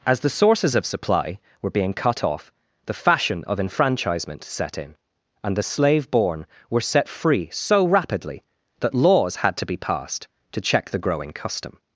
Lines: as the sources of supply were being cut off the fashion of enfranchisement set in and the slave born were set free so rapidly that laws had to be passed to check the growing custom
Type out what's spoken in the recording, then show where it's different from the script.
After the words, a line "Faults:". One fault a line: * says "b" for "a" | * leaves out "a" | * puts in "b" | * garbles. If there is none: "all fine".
as the sources of supply were being cut off the fashion of enfranchisement set in and the slave born were set free so rapidly that laws had to be passed to check the growing custom
Faults:
all fine